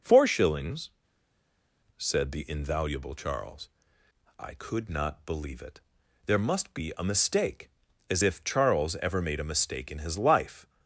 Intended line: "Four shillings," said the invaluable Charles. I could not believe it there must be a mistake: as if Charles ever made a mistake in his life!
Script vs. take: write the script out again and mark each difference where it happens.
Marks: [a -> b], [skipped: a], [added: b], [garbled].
"Four shillings," said the invaluable Charles. I could not believe it there must be a mistake: as if Charles ever made a mistake in his life!